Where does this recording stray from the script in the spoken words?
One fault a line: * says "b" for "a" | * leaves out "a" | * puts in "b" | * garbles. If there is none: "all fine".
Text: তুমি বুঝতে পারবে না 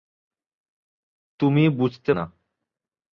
* leaves out "পারবে"